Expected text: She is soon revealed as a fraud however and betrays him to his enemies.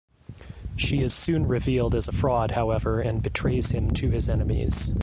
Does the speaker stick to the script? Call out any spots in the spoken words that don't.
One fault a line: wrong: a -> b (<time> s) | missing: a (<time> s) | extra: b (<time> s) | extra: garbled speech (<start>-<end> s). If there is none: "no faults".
no faults